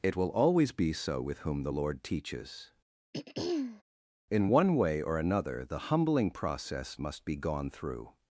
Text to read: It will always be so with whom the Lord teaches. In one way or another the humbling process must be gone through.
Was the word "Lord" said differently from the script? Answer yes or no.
no